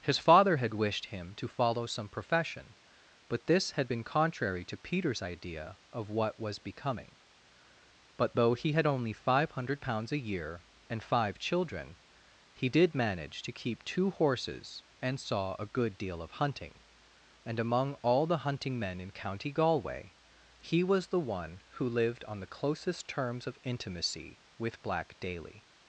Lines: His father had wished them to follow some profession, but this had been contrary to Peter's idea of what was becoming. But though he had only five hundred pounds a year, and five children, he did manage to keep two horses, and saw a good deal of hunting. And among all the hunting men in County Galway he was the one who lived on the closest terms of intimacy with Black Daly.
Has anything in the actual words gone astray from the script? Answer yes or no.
yes